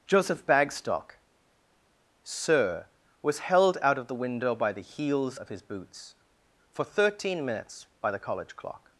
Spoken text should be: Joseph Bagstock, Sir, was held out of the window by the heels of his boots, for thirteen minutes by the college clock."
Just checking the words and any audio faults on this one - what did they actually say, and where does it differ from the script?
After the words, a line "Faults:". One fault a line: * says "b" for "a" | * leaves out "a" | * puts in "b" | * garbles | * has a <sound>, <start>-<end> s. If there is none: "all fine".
Joseph Bagstock, Sir, was held out of the window by the heels of his boots, for thirteen minutes by the college clock."
Faults:
all fine